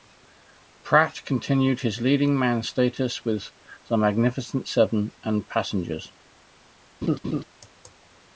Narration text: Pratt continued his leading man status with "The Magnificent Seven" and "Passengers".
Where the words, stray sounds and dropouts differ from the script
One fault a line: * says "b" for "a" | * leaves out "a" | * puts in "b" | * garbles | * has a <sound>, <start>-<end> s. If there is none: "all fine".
* has a laugh, 7.0-7.4 s